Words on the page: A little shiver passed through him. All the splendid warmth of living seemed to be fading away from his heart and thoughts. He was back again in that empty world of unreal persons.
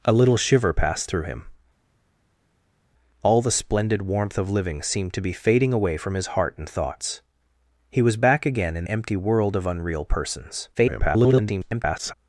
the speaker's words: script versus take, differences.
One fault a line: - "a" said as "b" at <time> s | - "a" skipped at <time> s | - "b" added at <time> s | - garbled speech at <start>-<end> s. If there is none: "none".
- "that" skipped at 8.9 s
- garbled speech at 10.7-12.1 s